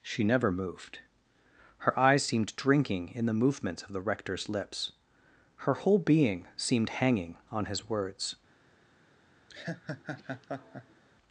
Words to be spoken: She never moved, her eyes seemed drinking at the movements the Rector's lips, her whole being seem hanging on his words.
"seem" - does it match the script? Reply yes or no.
no